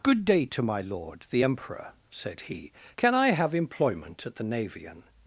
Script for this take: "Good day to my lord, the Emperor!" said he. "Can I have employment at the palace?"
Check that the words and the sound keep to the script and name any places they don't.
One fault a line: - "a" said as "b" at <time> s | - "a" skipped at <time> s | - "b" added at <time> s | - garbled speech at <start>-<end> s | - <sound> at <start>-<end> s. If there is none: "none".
- "palace" said as "navian" at 4.4 s